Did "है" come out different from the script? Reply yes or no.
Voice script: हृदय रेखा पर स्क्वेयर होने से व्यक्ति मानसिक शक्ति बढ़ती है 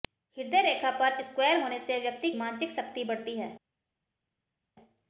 no